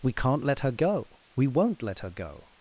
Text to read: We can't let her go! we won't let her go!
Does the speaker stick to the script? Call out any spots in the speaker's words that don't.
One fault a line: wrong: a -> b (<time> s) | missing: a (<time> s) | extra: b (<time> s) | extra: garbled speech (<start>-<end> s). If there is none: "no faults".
no faults